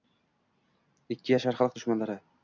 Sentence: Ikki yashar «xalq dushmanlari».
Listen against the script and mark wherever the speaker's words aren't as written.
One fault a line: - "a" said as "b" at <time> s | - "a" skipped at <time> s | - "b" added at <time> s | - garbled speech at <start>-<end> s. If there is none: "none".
none